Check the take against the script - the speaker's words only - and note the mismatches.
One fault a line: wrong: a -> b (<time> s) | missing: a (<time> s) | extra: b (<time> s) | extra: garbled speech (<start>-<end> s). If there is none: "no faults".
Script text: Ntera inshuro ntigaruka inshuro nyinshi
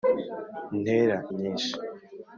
missing: inshuro ntigaruka inshuro (1.2 s)